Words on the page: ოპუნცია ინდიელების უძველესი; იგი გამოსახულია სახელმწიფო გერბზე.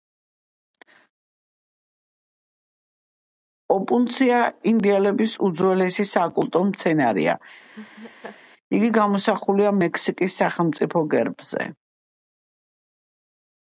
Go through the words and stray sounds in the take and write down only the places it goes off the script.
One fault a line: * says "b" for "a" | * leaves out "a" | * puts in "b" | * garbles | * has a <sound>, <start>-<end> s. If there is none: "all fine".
* puts in "საკულტო მცენარეა"
* has a laugh, 7.7-8.4 s
* puts in "მექსიკის"